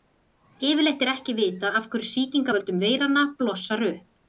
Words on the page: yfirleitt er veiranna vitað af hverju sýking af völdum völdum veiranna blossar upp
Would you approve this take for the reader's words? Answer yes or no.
no